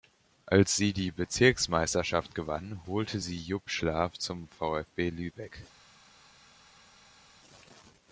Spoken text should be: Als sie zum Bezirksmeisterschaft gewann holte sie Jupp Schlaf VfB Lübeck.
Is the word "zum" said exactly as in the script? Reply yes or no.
no